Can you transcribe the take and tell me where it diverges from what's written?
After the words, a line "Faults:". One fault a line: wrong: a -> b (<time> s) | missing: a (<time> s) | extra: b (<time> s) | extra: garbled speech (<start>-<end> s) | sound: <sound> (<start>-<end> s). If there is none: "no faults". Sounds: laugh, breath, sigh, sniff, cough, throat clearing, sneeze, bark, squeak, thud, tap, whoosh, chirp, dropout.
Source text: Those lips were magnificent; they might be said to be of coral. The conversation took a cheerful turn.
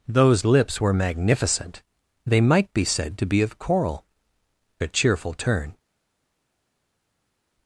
Those lips were magnificent; they might be said to be of coral. A cheerful turn.
Faults:
missing: The conversation took (4.1 s)